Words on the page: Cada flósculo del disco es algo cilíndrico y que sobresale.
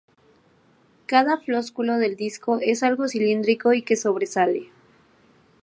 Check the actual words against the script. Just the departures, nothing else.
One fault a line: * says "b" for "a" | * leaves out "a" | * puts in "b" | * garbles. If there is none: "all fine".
all fine